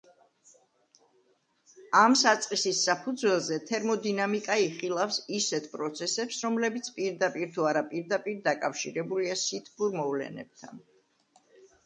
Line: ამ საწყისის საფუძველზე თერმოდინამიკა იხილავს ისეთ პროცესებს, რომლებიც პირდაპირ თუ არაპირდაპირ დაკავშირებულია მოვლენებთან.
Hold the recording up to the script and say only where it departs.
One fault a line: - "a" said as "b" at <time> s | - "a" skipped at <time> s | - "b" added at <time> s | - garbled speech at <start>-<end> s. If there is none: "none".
- "სითბურ" added at 9.4 s